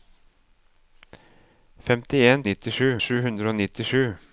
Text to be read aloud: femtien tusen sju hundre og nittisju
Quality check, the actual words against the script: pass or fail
fail